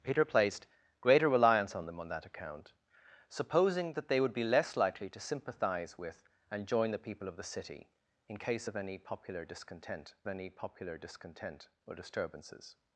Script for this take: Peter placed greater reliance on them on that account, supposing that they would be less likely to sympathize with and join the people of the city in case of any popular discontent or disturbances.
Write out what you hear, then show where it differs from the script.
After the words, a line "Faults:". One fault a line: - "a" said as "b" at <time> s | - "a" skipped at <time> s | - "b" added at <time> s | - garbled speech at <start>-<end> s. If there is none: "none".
Peter placed greater reliance on them on that account, supposing that they would be less likely to sympathize with and join the people of the city in case of any popular discontent any popular discontent or disturbances.
Faults:
- "any popular discontent" added at 10.3 s